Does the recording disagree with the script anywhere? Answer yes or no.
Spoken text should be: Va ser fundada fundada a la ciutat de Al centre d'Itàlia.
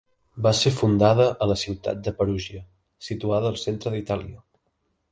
yes